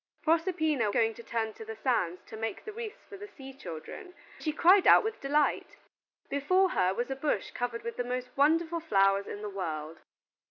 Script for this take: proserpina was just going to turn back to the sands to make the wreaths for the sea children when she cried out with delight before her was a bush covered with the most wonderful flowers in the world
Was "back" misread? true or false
true